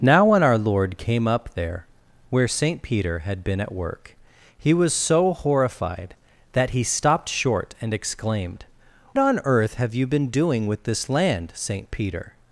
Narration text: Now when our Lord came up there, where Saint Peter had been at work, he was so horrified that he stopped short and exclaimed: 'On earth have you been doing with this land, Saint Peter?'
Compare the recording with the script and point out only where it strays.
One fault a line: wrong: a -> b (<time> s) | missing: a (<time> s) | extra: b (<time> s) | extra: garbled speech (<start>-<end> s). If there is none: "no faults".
no faults